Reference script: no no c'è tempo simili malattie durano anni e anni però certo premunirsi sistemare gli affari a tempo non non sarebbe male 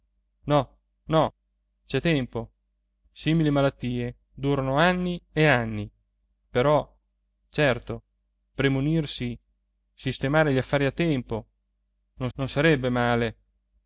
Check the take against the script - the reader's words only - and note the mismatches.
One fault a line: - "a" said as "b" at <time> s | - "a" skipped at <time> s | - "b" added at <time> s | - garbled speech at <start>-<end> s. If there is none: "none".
none